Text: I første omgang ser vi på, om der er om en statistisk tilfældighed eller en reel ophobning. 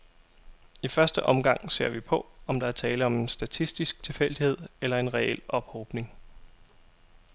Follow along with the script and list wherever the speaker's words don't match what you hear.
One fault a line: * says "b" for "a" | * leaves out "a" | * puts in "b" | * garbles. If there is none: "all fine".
* puts in "tale"